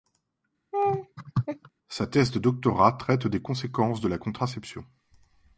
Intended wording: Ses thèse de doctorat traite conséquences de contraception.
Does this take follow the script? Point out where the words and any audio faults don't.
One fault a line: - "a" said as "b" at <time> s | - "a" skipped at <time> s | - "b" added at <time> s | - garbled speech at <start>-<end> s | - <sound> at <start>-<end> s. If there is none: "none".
- laugh at 0.7-1.7 s
- "Ses" said as "Sa" at 1.9 s
- "des" added at 3.3 s
- "la" added at 4.1 s